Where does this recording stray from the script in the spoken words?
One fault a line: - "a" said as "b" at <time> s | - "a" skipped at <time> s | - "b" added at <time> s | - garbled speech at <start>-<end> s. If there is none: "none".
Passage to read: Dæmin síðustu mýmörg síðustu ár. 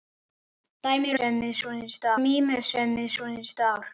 none